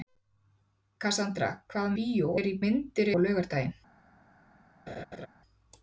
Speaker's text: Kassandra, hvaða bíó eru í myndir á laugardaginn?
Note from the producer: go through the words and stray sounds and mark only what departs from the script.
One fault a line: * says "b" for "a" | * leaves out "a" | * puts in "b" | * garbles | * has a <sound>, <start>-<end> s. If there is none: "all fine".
* has a laugh, 4.9-5.3 s